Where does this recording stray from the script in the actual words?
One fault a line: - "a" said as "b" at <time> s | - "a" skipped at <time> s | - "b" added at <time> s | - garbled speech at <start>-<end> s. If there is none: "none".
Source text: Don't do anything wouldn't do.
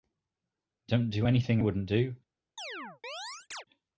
none